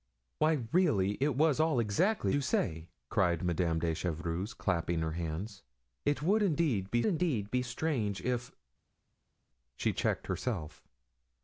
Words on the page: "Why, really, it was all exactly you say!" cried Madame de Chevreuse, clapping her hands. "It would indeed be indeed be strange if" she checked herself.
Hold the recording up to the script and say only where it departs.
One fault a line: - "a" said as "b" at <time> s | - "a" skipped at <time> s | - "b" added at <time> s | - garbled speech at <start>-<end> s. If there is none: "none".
none